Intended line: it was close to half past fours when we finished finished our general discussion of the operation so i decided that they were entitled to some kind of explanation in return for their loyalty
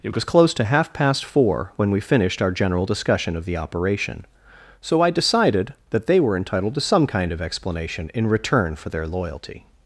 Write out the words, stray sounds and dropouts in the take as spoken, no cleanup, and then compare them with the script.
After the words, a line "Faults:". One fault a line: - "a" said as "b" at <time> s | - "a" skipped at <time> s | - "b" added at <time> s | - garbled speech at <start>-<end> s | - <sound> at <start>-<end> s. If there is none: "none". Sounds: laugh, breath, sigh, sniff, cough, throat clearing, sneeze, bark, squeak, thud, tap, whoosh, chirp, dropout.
it was close to half past four when we finished our general discussion of the operation so i decided that they were entitled to some kind of explanation in return for their loyalty
Faults:
- "fours" said as "four" at 1.2 s
- "finished" skipped at 2.4 s